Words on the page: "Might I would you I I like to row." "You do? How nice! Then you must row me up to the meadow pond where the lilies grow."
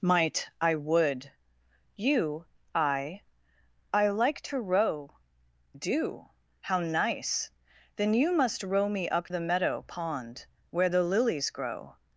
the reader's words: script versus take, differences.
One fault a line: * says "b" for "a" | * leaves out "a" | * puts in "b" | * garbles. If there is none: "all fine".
* leaves out "You"
* leaves out "to"